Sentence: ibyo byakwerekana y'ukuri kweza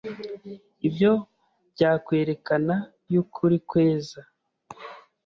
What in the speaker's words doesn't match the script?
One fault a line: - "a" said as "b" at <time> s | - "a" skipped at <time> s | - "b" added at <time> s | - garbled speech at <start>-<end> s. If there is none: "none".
none